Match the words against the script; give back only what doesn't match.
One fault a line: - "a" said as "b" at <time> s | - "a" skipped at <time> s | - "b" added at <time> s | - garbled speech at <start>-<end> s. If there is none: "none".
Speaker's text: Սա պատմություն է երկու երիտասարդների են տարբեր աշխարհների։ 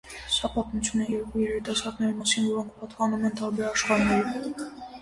- "մասին որոնք պատկանում" added at 2.2 s